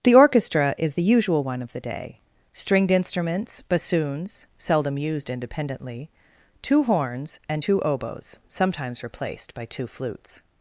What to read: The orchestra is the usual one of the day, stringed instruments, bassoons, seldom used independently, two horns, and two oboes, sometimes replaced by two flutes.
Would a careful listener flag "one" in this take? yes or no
no